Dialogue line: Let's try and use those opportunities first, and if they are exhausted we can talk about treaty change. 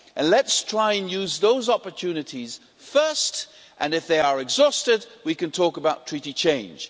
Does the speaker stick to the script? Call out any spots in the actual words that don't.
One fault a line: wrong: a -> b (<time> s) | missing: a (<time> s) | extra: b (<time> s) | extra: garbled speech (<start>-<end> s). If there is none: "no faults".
no faults